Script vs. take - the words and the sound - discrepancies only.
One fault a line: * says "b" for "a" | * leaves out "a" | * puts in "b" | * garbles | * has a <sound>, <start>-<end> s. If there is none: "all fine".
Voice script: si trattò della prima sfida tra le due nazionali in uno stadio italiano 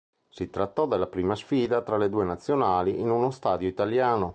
all fine